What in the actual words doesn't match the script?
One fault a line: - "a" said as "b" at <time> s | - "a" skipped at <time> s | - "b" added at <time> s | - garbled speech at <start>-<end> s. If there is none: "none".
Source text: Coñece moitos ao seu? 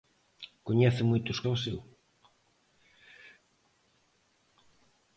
none